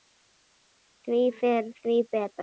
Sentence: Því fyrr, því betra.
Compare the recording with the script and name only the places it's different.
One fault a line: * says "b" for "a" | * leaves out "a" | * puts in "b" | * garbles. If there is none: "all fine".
all fine